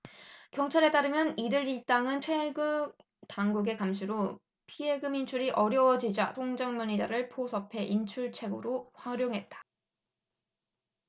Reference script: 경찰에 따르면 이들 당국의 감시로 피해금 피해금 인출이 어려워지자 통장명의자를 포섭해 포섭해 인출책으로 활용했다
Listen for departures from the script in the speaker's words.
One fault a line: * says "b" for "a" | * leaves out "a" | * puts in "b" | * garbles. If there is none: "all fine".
* puts in "일당은 최근"
* leaves out "피해금"
* leaves out "포섭해"